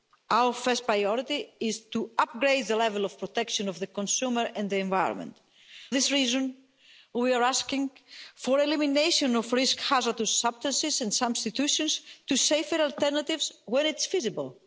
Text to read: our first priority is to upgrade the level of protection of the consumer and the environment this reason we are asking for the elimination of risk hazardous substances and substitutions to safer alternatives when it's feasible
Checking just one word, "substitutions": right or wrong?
right